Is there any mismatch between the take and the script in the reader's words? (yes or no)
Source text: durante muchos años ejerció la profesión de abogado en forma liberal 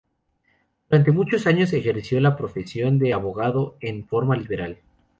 no